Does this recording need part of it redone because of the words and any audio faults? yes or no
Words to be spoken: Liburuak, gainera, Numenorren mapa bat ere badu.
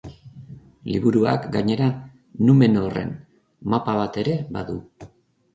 no